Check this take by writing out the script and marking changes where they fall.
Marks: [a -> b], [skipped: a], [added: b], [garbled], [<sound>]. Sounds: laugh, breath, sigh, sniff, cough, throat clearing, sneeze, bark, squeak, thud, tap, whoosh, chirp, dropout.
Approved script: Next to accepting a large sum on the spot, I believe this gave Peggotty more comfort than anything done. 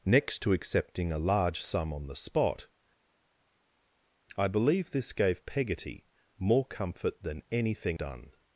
Next to accepting a large sum on the spot, I believe this gave Peggotty more comfort than anything done.